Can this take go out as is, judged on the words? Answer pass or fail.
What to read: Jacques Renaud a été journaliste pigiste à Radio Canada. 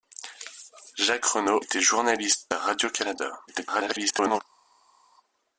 fail